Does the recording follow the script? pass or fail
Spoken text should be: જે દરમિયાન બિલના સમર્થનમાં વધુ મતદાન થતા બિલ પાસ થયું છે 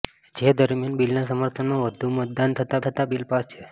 fail